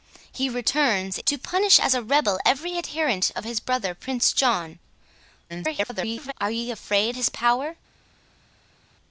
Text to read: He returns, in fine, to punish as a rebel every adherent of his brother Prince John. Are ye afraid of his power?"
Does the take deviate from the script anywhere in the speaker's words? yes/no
yes